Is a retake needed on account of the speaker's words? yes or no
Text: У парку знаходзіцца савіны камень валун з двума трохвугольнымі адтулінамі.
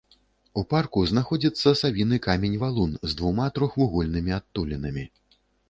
no